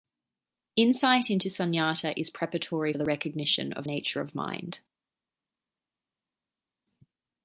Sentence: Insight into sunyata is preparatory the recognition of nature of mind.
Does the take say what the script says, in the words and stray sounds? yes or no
yes